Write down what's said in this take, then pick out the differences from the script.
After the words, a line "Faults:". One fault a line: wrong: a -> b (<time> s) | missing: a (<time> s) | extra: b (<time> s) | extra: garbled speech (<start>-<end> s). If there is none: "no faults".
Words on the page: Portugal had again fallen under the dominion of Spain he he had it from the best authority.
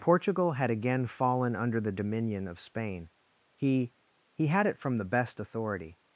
Portugal had again fallen under the dominion of Spain he he had it from the best authority.
Faults:
no faults